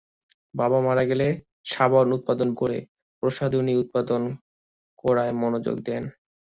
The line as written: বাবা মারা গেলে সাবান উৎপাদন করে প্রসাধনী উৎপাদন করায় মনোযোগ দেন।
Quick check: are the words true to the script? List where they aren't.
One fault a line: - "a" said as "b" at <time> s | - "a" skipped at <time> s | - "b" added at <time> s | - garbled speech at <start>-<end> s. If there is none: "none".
none